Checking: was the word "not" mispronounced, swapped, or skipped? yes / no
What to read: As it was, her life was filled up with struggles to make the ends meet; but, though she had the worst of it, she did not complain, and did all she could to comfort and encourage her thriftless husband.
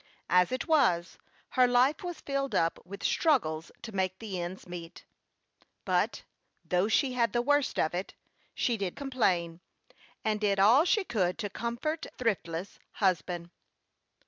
yes